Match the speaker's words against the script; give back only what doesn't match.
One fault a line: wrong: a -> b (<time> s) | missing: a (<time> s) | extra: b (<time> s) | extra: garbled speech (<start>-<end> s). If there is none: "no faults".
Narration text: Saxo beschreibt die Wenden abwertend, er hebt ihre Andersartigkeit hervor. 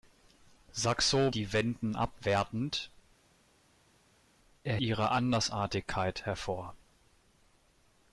missing: beschreibt (1.3 s)
missing: hebt (4.8 s)